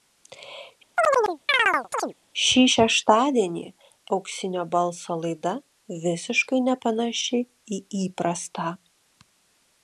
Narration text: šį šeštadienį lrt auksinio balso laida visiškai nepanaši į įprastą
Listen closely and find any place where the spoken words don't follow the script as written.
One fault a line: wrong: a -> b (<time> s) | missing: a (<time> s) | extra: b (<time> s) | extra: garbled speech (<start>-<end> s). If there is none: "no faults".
missing: lrt (3.6 s)